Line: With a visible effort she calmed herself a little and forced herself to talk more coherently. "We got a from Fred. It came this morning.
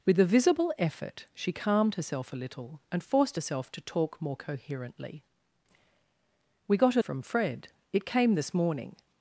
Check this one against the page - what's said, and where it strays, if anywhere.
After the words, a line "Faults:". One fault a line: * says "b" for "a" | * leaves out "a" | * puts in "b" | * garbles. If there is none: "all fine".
With a visible effort she calmed herself a little and forced herself to talk more coherently. "We got a from Fred. It came this morning.
Faults:
all fine